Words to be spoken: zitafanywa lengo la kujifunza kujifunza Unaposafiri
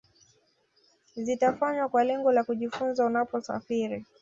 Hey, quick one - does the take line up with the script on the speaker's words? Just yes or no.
no